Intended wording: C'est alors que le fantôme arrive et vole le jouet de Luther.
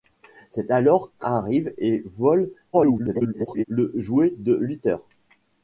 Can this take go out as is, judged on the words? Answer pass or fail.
fail